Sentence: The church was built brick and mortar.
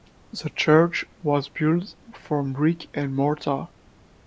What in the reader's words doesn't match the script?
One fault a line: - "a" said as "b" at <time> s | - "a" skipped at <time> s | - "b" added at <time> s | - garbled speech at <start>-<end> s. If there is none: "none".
- "from" added at 2.1 s